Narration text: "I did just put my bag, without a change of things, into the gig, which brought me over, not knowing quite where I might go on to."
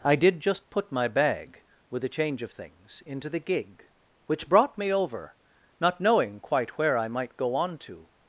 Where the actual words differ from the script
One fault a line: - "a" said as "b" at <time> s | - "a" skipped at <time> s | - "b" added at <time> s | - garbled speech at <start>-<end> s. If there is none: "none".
- "without" said as "with" at 1.9 s